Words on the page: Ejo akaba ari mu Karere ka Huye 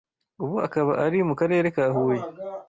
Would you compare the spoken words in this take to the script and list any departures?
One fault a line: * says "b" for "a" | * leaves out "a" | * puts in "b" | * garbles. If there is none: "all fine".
* says "Ubu" for "Ejo"